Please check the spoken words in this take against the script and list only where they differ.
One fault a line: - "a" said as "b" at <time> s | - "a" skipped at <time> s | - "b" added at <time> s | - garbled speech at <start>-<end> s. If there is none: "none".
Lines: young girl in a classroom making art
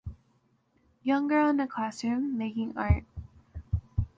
none